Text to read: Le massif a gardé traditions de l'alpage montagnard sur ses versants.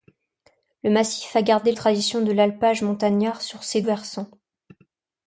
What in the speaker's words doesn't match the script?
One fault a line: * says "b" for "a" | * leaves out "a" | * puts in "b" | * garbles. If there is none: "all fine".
all fine